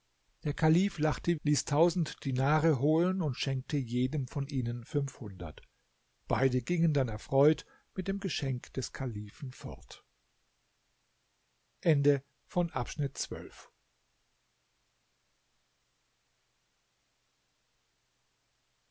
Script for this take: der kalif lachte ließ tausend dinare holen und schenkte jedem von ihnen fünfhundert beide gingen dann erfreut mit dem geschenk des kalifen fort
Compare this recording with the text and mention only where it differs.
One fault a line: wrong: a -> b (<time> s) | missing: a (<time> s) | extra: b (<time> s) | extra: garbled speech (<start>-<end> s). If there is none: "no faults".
no faults